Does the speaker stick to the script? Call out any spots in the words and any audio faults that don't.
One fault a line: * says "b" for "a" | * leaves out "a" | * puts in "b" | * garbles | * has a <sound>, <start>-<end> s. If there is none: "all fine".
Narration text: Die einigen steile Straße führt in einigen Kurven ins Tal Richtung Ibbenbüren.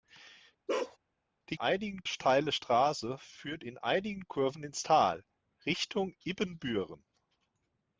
* has a bark, 0.7-1.0 s